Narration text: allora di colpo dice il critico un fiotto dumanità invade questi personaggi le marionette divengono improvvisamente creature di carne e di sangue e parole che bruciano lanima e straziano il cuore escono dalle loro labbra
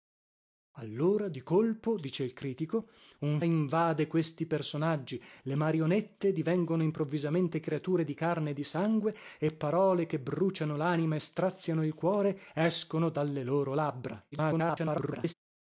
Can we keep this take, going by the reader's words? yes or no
no